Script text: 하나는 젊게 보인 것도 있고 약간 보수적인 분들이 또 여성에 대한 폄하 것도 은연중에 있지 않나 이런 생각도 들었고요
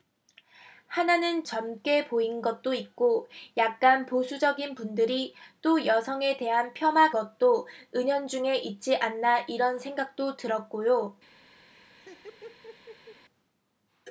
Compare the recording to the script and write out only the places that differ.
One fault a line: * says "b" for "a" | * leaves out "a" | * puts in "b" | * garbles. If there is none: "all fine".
all fine